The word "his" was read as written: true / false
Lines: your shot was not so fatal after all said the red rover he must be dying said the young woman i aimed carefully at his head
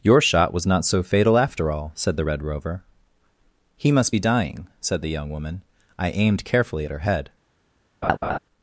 false